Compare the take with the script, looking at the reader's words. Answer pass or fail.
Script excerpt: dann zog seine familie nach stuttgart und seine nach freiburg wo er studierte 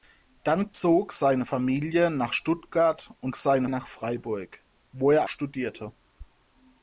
pass